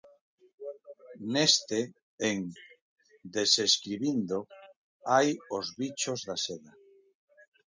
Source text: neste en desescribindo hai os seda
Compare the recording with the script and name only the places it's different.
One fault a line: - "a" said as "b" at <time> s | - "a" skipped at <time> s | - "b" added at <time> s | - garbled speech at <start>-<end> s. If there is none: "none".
- "bichos da" added at 5.8 s